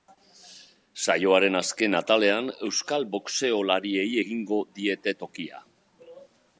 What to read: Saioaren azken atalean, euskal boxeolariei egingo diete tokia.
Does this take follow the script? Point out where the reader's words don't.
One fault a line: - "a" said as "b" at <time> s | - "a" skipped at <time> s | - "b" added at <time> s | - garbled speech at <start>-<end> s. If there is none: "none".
none